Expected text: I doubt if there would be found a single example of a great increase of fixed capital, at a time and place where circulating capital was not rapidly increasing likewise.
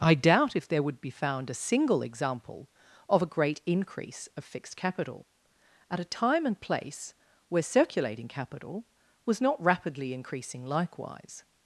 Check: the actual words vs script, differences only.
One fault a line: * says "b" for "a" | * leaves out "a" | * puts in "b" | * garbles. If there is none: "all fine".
all fine